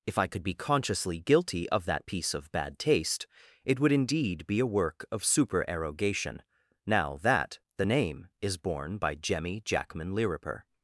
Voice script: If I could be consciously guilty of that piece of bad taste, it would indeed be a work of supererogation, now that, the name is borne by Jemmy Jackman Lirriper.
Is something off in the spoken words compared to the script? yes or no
no